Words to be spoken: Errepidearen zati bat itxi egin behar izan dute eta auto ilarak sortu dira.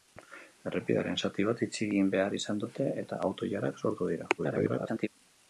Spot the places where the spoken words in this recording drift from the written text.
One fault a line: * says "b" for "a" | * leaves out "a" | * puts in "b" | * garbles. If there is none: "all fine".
* garbles